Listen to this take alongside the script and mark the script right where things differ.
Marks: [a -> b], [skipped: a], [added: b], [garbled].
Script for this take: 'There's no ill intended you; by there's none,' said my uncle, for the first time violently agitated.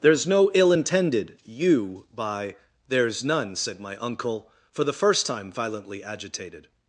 'There's no ill intended you; by there's none,' said my uncle, for the first time violently agitated.